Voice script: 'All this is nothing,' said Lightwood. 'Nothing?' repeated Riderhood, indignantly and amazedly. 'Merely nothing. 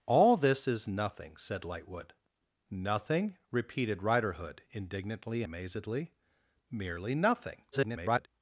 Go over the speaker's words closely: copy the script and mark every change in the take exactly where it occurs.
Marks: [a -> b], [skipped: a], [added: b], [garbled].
'All this is nothing,' said Lightwood. 'Nothing?' repeated Riderhood, indignantly [skipped: and] amazedly. 'Merely nothing. [garbled]